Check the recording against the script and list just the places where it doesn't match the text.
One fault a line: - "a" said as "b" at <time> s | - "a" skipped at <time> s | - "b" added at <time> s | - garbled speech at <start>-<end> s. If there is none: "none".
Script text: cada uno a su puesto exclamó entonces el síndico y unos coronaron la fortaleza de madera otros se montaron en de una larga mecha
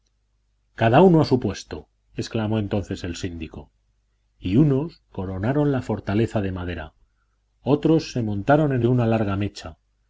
none